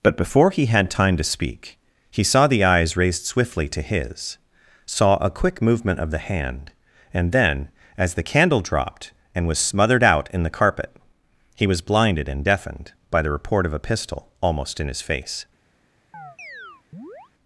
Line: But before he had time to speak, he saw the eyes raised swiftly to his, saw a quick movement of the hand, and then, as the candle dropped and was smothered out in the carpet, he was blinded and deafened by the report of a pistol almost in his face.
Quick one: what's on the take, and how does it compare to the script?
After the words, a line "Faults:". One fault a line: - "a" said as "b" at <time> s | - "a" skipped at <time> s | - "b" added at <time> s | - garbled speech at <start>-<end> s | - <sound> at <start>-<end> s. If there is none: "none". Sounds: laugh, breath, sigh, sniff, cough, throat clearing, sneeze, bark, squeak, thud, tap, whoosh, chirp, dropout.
But before he had time to speak, he saw the eyes raised swiftly to his, saw a quick movement of the hand, and then, as the candle dropped and was smothered out in the carpet, he was blinded and deafened by the report of a pistol almost in his face.
Faults:
- chirp at 16.1-17.3 s